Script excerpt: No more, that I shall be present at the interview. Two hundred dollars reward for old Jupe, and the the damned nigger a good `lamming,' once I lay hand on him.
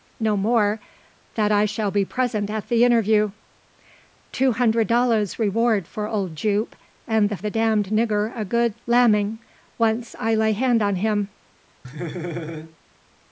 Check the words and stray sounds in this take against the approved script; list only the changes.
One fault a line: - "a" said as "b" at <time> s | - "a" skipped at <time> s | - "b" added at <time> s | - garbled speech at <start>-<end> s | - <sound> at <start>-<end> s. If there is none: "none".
- laugh at 11.8-12.8 s